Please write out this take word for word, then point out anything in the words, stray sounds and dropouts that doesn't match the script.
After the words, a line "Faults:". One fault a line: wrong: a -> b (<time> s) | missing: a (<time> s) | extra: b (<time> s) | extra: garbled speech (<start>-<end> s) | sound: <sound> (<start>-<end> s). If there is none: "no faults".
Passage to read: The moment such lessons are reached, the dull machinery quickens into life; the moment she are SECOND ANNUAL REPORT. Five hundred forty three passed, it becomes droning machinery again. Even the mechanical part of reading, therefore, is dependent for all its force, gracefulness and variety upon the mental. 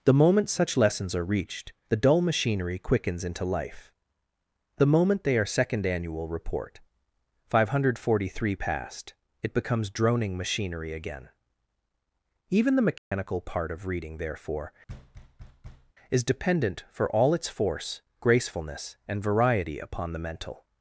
The moment such lessons are reached, the dull machinery quickens into life; the moment they are SECOND ANNUAL REPORT. Five hundred forty three passed, it becomes droning machinery again. Even the mechanical part of reading, therefore, is dependent for all its force, gracefulness and variety upon the mental.
Faults:
wrong: she -> they (5.2 s)
sound: dropout (13.0-13.1 s)
sound: thud (14.9-15.9 s)